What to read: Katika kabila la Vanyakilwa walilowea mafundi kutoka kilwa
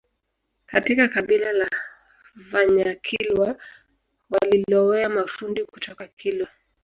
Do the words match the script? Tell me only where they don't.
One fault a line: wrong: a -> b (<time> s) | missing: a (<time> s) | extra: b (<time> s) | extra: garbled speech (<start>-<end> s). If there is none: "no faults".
no faults